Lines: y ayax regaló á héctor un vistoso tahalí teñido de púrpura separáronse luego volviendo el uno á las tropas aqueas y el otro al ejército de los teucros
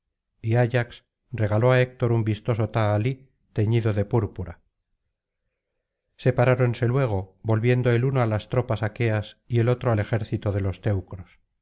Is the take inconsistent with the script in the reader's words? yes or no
no